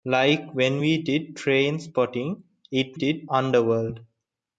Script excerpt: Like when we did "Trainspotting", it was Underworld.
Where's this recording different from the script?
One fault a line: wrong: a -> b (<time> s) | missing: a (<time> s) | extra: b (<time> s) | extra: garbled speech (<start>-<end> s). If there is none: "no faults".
wrong: was -> did (3.0 s)